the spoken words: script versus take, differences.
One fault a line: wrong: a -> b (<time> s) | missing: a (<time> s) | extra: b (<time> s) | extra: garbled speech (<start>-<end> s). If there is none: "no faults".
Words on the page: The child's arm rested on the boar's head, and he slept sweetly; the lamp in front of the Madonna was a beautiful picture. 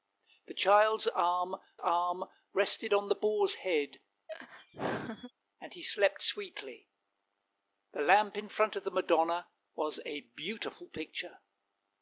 extra: arm (1.8 s)